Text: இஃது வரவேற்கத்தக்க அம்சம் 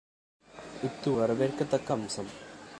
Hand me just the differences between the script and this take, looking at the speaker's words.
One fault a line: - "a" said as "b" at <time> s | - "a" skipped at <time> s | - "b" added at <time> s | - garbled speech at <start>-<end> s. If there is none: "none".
none